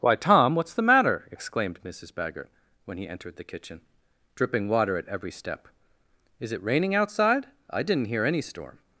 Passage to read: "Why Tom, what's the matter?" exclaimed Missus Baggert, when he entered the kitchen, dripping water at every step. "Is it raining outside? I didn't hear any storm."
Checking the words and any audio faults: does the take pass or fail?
pass